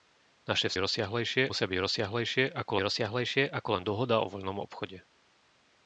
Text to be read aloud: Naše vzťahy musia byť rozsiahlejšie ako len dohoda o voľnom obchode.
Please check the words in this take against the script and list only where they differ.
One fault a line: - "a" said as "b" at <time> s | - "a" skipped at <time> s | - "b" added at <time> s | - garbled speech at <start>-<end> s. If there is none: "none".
- "vzťahy" said as "rozsiahlejšie" at 0.8 s
- "rozsiahlejšie ako" added at 2.8 s